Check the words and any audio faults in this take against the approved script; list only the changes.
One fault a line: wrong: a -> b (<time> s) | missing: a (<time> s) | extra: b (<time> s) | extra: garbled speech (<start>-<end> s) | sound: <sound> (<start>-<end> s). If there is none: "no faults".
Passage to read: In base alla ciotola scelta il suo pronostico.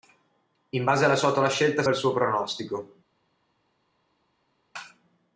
no faults